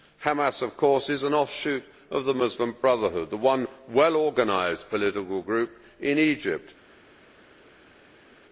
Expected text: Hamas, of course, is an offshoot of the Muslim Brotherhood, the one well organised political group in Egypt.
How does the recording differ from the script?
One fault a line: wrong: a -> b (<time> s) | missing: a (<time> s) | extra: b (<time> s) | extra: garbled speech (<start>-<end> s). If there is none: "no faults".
no faults